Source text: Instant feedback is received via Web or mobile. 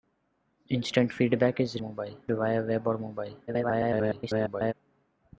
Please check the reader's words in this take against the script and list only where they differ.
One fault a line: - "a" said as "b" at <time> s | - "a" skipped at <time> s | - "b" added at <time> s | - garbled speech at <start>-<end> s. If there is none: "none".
- "received" said as "mobile" at 1.8 s
- garbled speech at 3.5-4.7 s